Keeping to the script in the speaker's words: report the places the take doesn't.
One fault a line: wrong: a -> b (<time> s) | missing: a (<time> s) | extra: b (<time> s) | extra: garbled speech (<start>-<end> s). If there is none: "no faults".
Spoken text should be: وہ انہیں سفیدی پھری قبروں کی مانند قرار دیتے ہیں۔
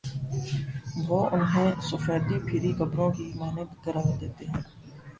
no faults